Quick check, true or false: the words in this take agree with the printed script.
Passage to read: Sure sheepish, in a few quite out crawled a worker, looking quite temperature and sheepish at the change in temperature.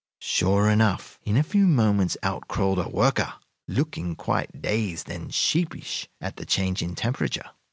false